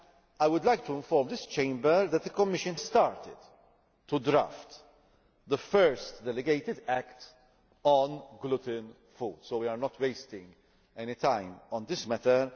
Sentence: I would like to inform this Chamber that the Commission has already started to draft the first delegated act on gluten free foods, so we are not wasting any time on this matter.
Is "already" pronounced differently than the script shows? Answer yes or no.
yes